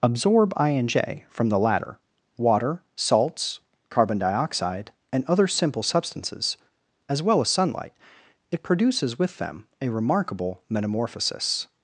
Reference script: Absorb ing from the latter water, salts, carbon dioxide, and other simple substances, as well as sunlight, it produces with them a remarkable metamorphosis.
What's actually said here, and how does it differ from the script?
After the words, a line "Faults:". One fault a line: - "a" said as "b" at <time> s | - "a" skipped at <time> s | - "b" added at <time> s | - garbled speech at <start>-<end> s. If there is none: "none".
Absorb I and j from the latter water, salts, carbon dioxide, and other simple substances, as well as sunlight, it produces with them a remarkable metamorphosis.
Faults:
- "ing" said as "I and j" at 0.6 s